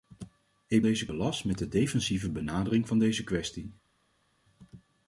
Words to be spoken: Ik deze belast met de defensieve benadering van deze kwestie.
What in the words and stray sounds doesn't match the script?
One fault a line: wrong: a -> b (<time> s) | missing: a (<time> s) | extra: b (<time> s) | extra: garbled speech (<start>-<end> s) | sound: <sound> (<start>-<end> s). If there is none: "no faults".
no faults